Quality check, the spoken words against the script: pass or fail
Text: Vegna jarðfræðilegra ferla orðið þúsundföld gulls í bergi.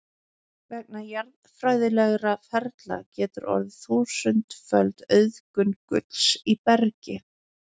fail